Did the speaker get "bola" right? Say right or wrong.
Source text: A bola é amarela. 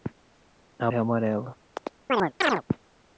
wrong